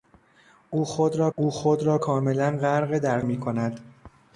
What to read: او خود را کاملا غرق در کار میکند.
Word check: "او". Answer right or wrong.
right